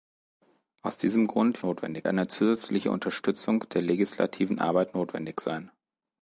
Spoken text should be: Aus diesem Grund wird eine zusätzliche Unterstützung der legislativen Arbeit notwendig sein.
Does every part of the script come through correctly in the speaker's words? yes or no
no